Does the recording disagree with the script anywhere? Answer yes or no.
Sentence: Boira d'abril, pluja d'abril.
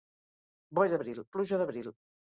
no